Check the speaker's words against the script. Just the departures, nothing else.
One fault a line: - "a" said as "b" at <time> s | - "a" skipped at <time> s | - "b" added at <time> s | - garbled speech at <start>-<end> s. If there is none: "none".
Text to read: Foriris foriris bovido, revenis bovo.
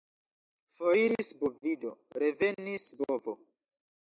- "foriris" skipped at 1.3 s